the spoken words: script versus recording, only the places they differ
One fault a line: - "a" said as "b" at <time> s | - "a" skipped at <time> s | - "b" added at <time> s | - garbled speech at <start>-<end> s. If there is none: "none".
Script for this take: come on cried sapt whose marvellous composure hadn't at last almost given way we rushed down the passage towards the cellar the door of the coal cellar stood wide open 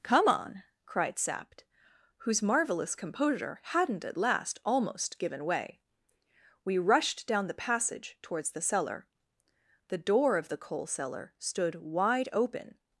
none